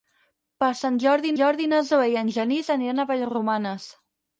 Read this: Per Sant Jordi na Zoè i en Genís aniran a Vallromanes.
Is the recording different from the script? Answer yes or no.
yes